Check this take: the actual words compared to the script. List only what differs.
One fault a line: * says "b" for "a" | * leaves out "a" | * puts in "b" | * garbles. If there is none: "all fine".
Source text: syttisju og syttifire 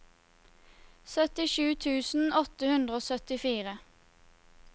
* puts in "tusen åtte hundre"